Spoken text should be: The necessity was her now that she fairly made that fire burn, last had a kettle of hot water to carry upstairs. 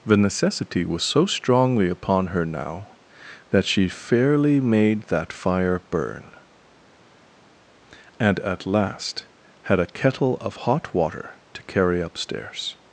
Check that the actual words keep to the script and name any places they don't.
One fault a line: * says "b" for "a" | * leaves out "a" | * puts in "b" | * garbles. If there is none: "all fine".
* puts in "so strongly upon"
* puts in "and at"